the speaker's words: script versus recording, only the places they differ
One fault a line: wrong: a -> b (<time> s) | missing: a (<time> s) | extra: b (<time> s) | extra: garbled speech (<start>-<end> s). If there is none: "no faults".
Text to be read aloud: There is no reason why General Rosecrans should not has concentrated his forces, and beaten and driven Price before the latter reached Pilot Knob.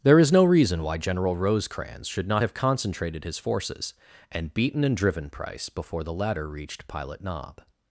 wrong: has -> have (2.4 s)